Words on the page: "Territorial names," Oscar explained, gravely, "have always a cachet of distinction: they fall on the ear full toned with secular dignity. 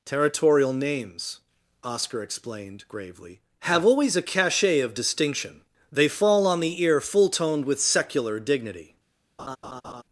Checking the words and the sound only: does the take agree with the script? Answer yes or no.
no